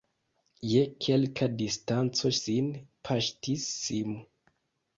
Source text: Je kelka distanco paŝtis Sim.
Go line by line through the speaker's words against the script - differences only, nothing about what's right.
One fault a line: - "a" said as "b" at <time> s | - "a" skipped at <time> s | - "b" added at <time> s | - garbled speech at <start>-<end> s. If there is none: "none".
- "sin" added at 2.4 s